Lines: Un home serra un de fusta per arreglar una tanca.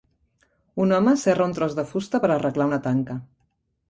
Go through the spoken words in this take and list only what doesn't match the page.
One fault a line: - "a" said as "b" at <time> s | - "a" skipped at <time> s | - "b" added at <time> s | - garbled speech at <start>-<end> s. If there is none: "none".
- "tros" added at 1.6 s